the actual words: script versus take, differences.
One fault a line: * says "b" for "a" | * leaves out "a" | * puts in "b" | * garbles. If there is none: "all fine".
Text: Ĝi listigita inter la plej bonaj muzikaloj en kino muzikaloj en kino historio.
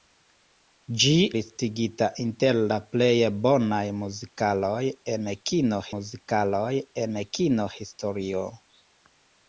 all fine